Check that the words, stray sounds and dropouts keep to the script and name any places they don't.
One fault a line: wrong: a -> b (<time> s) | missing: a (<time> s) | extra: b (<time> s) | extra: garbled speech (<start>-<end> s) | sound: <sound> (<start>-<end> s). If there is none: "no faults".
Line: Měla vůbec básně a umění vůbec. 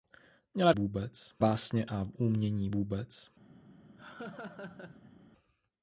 sound: laugh (4.0-5.1 s)